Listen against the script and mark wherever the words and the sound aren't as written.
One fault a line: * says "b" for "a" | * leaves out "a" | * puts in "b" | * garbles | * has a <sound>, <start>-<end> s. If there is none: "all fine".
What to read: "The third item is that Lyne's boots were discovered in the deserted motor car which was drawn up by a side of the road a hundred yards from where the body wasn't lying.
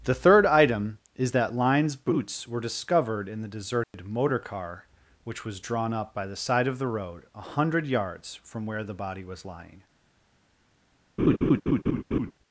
* has a dropout, 3.8-3.9 s
* says "the" for "a"
* says "was" for "wasn't"
* has a laugh, 11.2-12.3 s